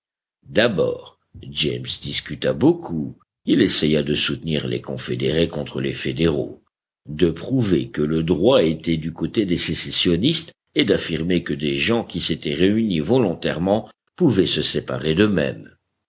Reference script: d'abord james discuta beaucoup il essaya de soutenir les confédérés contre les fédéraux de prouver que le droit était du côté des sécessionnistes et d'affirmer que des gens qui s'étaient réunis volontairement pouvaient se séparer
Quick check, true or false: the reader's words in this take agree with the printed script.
true